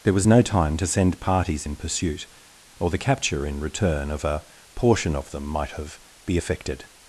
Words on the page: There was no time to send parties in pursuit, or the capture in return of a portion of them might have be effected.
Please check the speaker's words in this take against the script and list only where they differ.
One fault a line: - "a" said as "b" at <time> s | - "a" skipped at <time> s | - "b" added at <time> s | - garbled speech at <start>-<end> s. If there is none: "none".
none